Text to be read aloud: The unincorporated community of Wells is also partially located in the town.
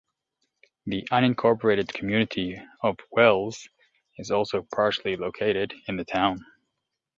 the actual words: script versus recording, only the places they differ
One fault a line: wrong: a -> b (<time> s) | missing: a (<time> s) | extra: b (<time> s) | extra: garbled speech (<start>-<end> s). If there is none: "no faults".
no faults